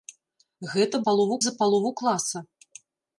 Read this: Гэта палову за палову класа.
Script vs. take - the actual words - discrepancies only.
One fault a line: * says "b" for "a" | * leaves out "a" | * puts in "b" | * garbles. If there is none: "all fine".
all fine